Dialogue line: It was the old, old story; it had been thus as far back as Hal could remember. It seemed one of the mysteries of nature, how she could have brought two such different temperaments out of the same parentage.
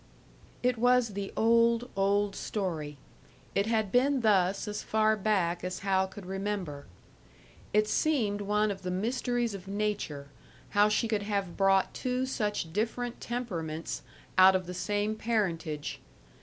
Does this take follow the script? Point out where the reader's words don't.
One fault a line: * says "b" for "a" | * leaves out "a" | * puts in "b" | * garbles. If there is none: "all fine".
all fine